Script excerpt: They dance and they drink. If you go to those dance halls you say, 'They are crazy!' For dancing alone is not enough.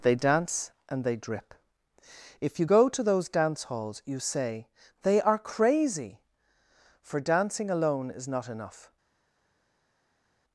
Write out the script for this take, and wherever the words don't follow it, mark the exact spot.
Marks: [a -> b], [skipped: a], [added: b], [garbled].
They dance and they [drink. -> drip] If you go to those dance halls you say, 'They are crazy!' For dancing alone is not enough.